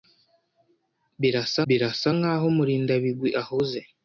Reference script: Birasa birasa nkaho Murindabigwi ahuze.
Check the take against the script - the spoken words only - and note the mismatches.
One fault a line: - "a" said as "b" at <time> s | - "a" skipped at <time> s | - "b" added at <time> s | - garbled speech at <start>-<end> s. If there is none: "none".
none